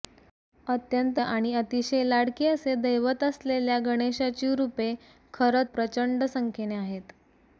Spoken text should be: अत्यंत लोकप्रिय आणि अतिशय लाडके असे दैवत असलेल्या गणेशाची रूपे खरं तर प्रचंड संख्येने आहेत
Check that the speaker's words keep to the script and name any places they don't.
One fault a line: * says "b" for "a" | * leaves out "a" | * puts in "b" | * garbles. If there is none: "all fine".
* leaves out "लोकप्रिय"
* leaves out "तर"